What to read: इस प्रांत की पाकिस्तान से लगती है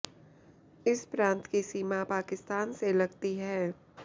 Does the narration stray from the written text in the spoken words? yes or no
yes